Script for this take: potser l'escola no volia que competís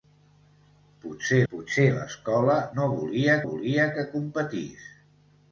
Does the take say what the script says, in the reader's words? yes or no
no